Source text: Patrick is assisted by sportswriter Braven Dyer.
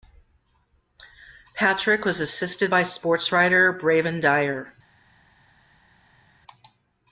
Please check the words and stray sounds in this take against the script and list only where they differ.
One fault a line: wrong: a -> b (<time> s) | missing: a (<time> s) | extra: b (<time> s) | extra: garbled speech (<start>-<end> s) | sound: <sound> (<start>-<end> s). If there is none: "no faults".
wrong: is -> was (2.0 s)